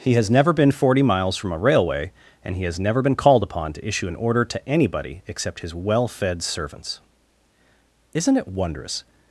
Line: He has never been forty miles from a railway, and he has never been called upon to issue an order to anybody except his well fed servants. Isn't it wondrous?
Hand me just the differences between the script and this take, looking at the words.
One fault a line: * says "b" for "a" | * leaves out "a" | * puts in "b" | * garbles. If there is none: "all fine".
all fine